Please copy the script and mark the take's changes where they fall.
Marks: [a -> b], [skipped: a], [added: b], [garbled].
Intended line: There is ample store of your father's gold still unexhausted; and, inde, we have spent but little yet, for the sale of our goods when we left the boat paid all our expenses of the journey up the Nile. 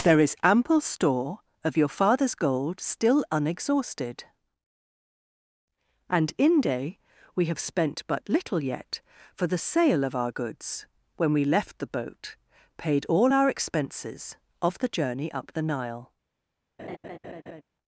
There is ample store of your father's gold still unexhausted; and, inde, we have spent but little yet, for the sale of our goods when we left the boat paid all our expenses of the journey up the Nile.